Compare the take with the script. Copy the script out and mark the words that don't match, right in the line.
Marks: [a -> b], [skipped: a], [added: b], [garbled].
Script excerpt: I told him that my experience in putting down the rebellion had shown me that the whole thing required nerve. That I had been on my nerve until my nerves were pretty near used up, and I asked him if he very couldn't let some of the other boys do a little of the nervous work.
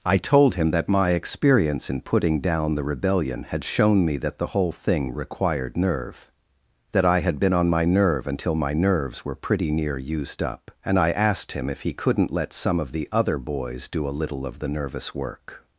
I told him that my experience in putting down the rebellion had shown me that the whole thing required nerve. That I had been on my nerve until my nerves were pretty near used up, and I asked him if he [skipped: very] couldn't let some of the other boys do a little of the nervous work.